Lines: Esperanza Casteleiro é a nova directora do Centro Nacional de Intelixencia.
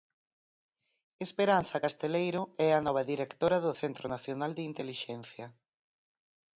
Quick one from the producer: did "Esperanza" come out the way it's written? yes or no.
yes